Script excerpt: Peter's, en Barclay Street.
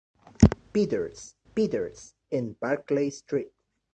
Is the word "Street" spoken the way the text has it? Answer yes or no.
yes